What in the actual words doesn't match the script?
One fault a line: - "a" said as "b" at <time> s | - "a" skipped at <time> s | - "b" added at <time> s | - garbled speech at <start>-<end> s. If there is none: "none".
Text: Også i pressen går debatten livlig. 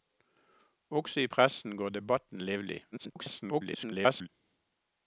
- garbled speech at 2.9-4.3 s